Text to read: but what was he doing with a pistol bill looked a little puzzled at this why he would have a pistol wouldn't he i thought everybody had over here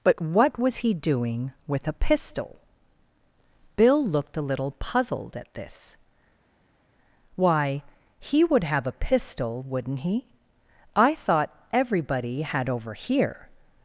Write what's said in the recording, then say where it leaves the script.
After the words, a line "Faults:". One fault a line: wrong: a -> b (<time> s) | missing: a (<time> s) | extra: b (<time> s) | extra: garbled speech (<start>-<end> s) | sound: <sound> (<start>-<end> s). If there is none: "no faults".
but what was he doing with a pistol bill looked a little puzzled at this why he would have a pistol wouldn't he i thought everybody had over here
Faults:
no faults